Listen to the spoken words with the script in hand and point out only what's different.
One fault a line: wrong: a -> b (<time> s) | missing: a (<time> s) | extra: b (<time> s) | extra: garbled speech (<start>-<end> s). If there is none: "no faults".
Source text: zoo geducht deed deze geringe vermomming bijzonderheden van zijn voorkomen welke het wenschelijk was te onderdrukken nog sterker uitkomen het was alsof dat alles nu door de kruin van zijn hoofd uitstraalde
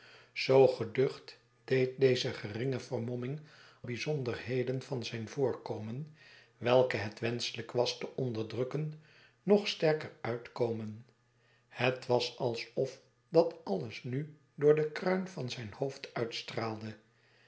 no faults